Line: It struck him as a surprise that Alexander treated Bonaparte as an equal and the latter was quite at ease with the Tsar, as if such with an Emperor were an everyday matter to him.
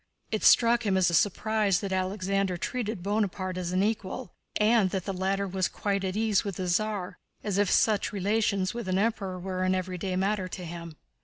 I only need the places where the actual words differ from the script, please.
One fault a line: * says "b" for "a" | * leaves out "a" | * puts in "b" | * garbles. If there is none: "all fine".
* puts in "that"
* puts in "relations"